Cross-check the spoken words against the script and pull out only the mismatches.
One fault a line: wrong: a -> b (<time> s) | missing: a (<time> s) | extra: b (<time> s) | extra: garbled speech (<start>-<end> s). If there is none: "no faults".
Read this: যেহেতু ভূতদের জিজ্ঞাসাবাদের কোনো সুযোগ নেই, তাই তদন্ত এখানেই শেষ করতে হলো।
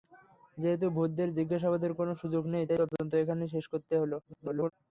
extra: garbled speech (4.2-4.7 s)